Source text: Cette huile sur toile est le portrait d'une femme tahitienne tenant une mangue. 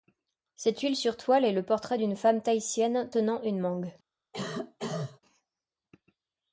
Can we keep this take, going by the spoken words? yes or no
yes